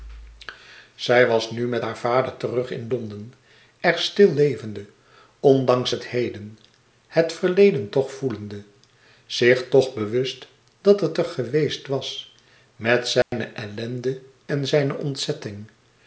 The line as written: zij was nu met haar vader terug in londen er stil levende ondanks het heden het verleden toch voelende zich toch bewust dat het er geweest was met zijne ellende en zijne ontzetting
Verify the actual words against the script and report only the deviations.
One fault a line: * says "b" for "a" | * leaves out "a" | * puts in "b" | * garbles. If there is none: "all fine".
all fine